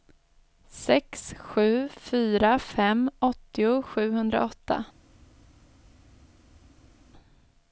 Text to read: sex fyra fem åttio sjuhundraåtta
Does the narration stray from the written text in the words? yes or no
yes